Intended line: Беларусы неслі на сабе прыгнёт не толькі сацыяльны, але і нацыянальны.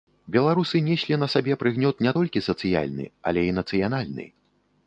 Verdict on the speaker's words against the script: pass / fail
pass